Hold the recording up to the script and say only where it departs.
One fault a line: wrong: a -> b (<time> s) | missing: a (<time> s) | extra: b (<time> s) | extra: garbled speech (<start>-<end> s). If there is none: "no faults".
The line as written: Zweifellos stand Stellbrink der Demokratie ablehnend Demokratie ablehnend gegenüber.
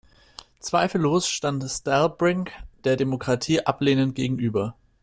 missing: Demokratie ablehnend (4.1 s)